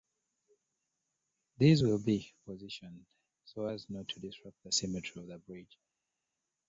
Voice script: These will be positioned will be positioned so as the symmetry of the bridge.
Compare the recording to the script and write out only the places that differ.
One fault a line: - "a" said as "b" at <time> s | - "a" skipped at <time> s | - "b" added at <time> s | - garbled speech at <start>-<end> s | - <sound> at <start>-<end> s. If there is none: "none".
- "will be positioned so as" said as "so as not to disrupt" at 3.4 s